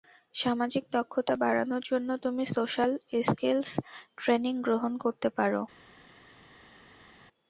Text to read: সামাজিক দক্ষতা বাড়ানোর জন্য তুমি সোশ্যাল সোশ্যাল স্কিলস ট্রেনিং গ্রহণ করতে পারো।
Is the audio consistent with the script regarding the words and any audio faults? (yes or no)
no